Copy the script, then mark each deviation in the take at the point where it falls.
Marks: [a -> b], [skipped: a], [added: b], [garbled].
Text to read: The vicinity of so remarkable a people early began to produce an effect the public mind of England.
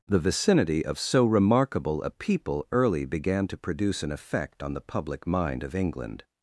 The vicinity of so remarkable a people early began to produce an effect [added: on] the public mind of England.